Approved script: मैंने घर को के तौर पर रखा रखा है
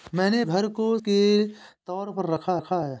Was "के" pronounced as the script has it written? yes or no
yes